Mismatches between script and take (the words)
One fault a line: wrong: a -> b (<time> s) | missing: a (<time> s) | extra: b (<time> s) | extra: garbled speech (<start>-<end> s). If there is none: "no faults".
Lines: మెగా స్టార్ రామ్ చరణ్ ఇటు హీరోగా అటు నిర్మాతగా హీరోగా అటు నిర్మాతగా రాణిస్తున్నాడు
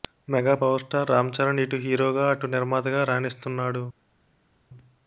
extra: పవర్ (0.6 s)
missing: హీరోగా అటు నిర్మాతగా (3.0 s)